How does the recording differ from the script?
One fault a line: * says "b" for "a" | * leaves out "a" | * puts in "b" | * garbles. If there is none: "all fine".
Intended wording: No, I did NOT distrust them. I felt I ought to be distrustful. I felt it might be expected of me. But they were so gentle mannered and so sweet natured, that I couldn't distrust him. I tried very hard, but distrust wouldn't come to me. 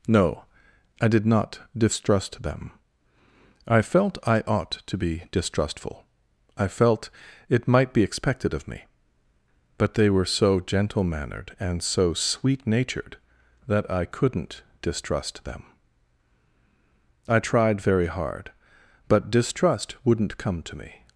* says "them" for "him"